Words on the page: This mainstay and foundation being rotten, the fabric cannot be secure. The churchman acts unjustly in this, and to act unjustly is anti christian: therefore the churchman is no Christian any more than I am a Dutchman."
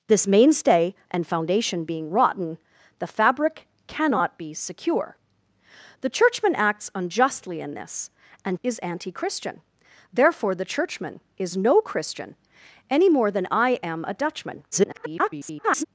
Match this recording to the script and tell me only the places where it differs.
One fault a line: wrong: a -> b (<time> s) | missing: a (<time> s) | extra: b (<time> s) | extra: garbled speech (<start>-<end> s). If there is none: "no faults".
missing: to act unjustly (8.6 s)
extra: garbled speech (14.7-15.8 s)